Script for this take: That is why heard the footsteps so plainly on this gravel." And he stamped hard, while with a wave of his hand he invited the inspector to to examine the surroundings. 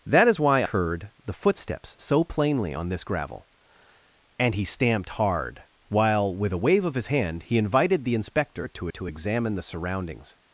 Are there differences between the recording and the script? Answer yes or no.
no